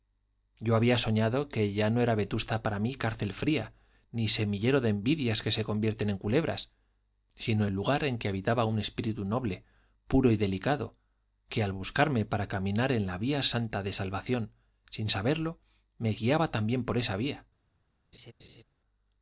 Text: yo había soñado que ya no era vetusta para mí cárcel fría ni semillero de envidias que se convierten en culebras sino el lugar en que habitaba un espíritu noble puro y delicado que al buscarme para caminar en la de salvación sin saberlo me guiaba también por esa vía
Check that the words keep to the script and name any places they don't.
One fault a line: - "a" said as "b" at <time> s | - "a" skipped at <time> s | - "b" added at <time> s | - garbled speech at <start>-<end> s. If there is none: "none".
- "vía santa" added at 13.2 s